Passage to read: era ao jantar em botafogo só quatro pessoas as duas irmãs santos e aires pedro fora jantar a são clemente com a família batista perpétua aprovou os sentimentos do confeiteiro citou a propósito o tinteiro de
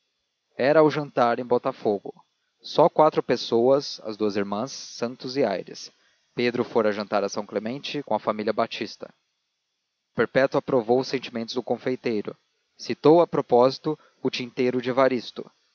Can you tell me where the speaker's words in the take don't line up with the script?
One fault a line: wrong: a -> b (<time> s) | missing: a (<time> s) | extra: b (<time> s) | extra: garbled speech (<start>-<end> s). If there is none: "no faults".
no faults